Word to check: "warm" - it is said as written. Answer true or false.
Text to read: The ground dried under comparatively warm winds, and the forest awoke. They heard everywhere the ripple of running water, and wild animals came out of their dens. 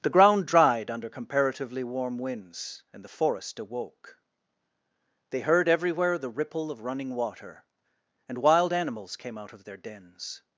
true